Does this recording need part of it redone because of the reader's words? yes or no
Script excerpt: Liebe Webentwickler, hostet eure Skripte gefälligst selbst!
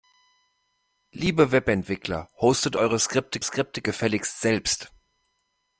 yes